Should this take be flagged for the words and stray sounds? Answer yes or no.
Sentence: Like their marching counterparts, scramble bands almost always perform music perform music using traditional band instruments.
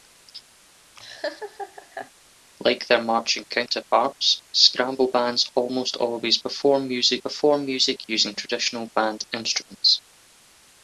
yes